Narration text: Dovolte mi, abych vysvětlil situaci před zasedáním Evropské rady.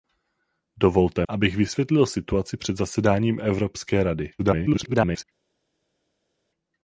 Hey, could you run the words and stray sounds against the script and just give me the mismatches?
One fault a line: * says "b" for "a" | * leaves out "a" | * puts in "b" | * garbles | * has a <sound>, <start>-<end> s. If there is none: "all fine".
* leaves out "mi"
* garbles